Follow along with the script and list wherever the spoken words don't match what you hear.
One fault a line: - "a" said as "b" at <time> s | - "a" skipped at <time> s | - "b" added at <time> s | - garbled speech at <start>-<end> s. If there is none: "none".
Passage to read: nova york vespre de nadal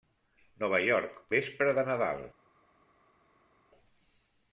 none